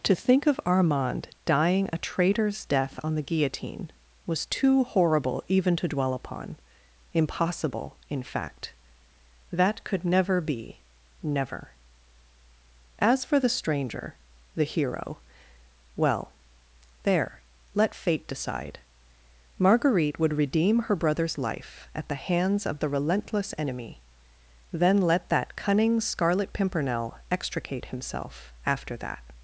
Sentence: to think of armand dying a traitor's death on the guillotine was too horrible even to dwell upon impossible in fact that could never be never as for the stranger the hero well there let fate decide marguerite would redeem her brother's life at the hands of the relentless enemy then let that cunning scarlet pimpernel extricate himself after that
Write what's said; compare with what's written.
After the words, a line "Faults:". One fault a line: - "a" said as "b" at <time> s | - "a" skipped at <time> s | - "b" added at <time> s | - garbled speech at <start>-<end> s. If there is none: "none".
to think of armand dying a traitor's death on the guillotine was too horrible even to dwell upon impossible in fact that could never be never as for the stranger the hero well there let fate decide marguerite would redeem her brother's life at the hands of the relentless enemy then let that cunning scarlet pimpernel extricate himself after that
Faults:
none